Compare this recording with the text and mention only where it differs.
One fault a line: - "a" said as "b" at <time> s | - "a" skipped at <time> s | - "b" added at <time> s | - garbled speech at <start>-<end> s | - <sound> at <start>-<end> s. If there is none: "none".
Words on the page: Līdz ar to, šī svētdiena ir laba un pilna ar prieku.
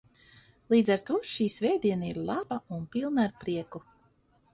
none